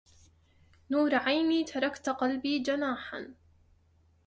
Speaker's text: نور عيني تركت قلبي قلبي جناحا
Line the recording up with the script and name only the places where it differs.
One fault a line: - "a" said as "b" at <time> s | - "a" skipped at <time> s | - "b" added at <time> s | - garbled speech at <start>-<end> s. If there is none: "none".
- "قلبي" skipped at 2.6 s